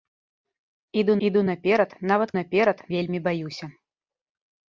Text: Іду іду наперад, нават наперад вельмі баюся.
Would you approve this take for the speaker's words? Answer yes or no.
yes